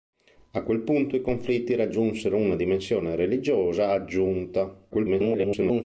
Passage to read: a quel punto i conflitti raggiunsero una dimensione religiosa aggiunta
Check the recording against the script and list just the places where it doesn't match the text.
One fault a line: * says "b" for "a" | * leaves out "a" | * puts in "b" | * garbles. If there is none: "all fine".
* garbles